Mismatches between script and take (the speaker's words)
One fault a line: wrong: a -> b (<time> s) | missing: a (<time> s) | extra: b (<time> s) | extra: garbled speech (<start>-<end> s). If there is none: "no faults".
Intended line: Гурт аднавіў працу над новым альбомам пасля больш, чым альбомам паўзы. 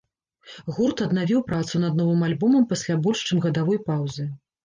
wrong: альбомам -> гадавой (3.5 s)